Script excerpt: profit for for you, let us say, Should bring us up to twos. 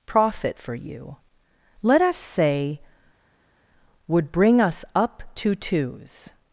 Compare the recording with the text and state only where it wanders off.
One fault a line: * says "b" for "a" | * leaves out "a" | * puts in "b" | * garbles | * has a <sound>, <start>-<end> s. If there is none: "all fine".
* leaves out "for"
* says "Would" for "Should"